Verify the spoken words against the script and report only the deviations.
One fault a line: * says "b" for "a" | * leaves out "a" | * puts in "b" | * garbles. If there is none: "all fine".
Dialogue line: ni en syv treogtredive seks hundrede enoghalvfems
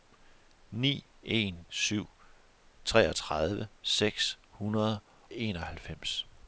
all fine